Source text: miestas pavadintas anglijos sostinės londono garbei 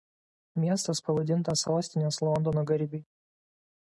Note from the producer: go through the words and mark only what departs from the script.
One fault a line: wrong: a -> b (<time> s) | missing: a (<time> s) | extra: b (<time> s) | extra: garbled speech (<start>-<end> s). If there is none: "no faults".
missing: anglijos (1.6 s)